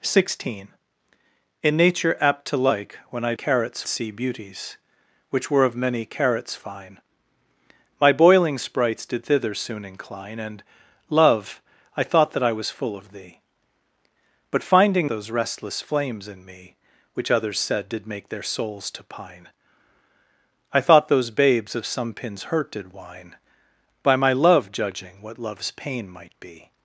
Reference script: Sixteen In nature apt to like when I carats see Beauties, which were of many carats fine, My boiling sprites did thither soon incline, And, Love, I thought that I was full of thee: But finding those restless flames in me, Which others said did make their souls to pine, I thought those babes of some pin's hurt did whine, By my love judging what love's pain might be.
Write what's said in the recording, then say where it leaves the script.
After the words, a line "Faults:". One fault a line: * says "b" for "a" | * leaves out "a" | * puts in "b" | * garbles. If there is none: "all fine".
Sixteen In nature apt to like when I carats see Beauties, which were of many carats fine, My boiling sprites did thither soon incline, And, Love, I thought that I was full of thee: But finding those restless flames in me, Which others said did make their souls to pine, I thought those babes of some pin's hurt did whine, By my love judging what love's pain might be.
Faults:
all fine